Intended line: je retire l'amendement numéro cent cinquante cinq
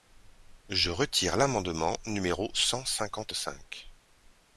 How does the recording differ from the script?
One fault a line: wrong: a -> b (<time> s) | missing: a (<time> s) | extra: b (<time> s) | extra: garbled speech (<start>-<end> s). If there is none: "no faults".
no faults